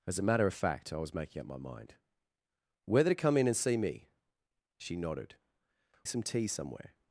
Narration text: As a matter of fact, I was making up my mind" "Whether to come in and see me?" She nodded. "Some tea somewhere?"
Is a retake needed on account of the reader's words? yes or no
no